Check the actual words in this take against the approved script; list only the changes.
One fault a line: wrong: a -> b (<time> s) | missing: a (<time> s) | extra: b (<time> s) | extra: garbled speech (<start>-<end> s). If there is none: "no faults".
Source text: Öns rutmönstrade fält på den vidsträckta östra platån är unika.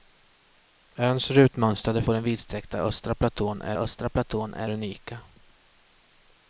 missing: fält (2.0 s)
extra: östra platån är (3.7 s)